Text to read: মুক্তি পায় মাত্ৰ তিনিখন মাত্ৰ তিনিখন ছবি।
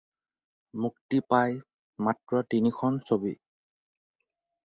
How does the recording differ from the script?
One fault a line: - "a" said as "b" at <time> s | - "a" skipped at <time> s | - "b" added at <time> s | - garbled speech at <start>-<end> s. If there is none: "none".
- "মাত্ৰ তিনিখন" skipped at 3.0 s